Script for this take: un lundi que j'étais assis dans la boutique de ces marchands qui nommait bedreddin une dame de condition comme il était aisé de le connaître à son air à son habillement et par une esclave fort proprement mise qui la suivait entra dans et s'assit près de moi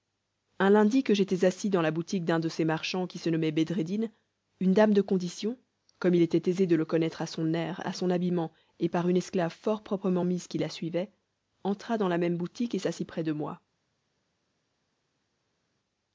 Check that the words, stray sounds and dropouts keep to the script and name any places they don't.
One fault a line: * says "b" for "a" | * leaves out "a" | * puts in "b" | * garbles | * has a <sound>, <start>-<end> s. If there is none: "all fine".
* puts in "d'un"
* puts in "se"
* puts in "la même boutique"